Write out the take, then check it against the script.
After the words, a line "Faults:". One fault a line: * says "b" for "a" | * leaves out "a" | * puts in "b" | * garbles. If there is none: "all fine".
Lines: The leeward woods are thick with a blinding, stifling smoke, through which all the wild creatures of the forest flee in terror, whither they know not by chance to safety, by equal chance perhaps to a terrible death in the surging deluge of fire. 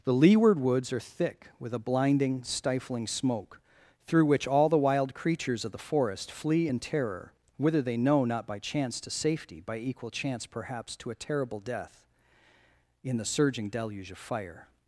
The leeward woods are thick with a blinding, stifling smoke, through which all the wild creatures of the forest flee in terror, whither they know not by chance to safety, by equal chance perhaps to a terrible death in the surging deluge of fire.
Faults:
all fine